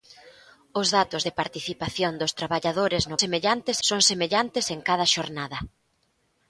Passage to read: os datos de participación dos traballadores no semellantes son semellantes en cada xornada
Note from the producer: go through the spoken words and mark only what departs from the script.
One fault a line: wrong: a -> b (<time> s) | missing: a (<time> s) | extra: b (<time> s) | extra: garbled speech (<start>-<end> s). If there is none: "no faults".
no faults